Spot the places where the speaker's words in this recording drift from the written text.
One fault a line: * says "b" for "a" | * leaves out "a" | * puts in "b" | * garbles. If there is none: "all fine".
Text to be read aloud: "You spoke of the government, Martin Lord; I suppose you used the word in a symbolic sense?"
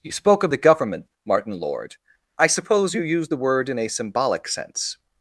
all fine